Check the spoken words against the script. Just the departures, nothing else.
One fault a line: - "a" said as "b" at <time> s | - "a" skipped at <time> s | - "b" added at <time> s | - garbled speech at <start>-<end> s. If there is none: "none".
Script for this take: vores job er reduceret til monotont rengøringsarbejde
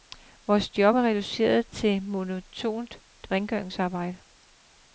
none